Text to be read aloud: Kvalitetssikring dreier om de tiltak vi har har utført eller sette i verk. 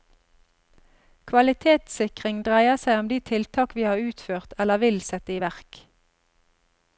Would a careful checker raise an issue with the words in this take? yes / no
yes